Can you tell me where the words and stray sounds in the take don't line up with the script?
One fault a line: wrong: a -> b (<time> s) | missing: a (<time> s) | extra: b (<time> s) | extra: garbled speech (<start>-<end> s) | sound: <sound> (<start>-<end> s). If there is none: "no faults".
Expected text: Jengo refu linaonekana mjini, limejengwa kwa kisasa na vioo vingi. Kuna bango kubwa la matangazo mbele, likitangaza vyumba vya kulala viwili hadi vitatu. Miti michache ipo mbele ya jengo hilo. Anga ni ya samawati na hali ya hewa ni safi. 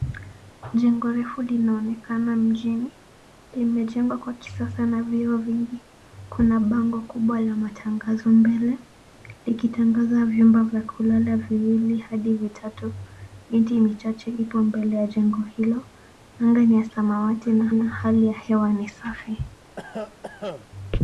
extra: na (17.7 s)
sound: cough (19.8-20.7 s)